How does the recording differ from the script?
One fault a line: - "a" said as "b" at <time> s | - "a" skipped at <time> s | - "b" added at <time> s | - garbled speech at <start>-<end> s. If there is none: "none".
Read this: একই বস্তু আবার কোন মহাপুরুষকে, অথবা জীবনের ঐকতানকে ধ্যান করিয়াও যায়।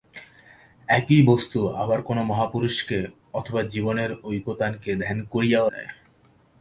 none